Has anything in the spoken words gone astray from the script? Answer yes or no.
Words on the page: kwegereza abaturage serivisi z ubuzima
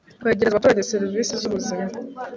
no